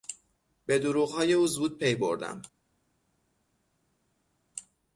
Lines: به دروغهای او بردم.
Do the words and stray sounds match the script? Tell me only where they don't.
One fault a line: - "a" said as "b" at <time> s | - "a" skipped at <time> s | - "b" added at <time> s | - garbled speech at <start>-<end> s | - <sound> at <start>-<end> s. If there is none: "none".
- "زود پی" added at 1.5 s